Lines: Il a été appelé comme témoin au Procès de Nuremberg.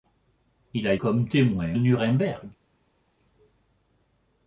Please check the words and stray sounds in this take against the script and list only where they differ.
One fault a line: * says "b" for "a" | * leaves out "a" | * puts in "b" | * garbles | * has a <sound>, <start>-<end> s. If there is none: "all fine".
* leaves out "été appelé"
* leaves out "au Procès de"